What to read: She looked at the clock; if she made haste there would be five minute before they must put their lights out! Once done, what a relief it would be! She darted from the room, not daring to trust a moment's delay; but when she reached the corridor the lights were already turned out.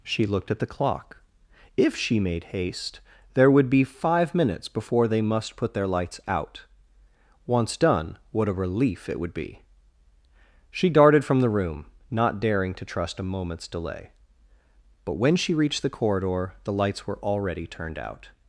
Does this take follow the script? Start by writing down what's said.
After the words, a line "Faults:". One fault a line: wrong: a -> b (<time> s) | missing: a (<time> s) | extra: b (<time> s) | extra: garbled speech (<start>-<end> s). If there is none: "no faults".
She looked at the clock; if she made haste there would be five minutes before they must put their lights out! Once done, what a relief it would be! She darted from the room, not daring to trust a moment's delay; but when she reached the corridor the lights were already turned out.
Faults:
wrong: minute -> minutes (4.3 s)